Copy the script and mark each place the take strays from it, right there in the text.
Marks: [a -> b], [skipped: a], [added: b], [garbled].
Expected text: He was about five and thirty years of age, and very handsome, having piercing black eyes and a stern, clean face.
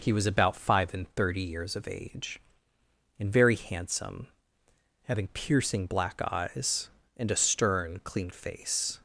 He was about five and thirty years of age, and very handsome, having piercing black eyes and a stern, clean face.